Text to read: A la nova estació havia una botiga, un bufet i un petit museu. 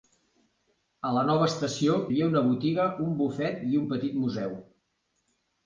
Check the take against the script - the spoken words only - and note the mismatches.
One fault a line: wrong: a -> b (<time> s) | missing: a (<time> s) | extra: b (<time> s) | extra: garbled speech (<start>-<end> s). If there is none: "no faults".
no faults